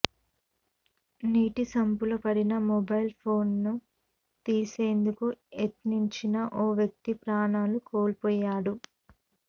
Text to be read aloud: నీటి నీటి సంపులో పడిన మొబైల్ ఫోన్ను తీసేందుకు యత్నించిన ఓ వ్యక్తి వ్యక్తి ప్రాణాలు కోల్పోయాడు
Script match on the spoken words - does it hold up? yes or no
no